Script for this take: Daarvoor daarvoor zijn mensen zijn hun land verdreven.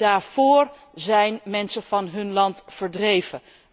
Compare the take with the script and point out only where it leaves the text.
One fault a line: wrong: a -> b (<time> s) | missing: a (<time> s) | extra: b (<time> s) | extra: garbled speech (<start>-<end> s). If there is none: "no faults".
missing: daarvoor (0.7 s)
wrong: zijn -> van (1.8 s)